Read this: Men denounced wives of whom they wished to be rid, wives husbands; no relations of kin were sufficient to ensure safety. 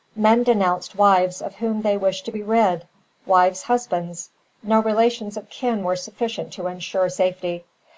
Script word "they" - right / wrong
right